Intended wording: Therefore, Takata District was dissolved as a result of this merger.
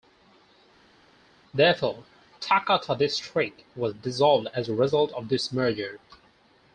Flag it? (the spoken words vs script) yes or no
no